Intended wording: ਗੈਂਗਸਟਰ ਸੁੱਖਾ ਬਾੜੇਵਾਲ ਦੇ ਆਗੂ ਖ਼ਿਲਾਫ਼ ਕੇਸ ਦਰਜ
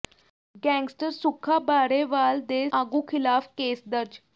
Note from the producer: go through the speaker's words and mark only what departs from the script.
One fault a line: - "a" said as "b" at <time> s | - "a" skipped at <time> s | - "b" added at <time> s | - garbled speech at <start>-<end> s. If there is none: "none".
none